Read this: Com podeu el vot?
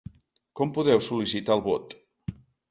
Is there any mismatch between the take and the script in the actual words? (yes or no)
yes